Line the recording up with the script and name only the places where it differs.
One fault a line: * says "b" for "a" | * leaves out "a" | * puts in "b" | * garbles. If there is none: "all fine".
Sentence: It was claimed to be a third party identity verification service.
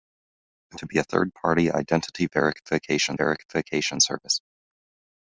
* leaves out "was claimed"
* puts in "verification"